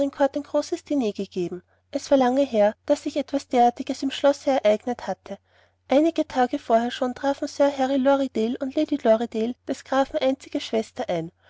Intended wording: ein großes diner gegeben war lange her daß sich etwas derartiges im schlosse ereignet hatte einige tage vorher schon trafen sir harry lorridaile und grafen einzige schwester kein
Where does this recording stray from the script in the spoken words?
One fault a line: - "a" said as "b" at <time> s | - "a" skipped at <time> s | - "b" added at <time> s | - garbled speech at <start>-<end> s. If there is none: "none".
- "es" added at 1.9 s
- "lady lorridaile des" added at 8.7 s
- "kein" said as "ein" at 11.1 s